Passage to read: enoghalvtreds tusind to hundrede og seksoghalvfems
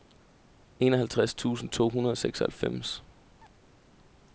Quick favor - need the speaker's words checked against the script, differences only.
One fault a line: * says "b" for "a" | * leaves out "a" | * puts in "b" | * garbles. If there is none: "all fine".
all fine